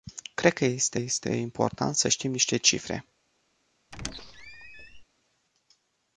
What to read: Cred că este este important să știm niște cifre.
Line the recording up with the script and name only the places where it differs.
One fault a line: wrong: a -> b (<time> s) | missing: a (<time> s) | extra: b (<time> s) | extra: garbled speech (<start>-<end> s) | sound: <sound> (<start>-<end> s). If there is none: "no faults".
sound: squeak (3.9-5.0 s)